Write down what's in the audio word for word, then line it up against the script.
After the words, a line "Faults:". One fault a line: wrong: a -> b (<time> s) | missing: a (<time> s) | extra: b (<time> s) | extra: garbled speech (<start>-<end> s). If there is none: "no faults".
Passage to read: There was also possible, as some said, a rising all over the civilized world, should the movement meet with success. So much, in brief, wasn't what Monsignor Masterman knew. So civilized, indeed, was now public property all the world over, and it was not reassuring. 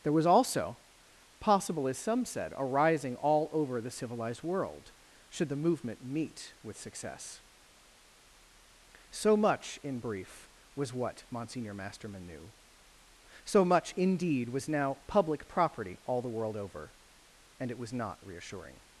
There was also possible, as some said, a rising all over the civilized world, should the movement meet with success. So much, in brief, was what Monsignor Masterman knew. So much, indeed, was now public property all the world over, and it was not reassuring.
Faults:
wrong: wasn't -> was (10.8 s)
wrong: civilized -> much (13.6 s)